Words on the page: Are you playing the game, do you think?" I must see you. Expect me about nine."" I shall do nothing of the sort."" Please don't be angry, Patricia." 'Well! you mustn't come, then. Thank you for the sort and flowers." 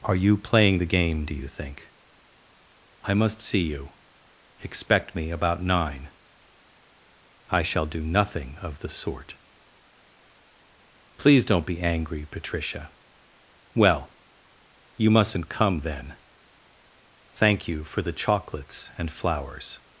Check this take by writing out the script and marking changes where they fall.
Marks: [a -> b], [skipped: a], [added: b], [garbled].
Are you playing the game, do you think?" I must see you. Expect me about nine."" I shall do nothing of the sort."" Please don't be angry, Patricia." 'Well! you mustn't come, then. Thank you for the [sort -> chocolates] and flowers."